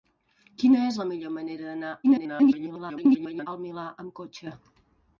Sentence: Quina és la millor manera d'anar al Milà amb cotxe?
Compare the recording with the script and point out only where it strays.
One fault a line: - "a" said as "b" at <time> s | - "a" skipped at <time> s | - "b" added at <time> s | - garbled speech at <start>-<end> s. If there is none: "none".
- garbled speech at 2.0-3.5 s